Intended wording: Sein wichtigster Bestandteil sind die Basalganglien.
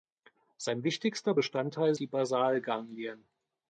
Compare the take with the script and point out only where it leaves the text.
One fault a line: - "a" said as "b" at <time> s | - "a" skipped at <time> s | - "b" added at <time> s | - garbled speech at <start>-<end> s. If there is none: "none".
- "sind" skipped at 2.0 s